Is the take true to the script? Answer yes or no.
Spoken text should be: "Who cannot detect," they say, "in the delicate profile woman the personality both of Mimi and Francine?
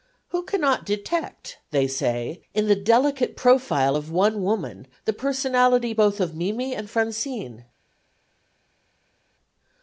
no